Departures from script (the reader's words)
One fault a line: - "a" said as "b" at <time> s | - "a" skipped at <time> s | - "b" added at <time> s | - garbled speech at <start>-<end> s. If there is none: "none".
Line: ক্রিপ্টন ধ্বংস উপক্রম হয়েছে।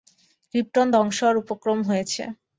- "হওয়ার" added at 1.2 s